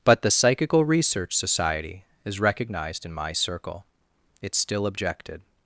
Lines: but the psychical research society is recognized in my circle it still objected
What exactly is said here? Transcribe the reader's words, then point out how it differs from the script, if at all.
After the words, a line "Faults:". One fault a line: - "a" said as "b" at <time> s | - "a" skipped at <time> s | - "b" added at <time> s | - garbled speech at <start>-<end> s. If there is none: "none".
but the psychical research society is recognized in my circle it still objected
Faults:
none